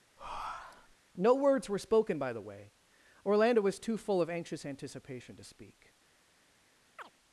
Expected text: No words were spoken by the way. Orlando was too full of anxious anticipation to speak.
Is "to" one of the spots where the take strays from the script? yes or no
no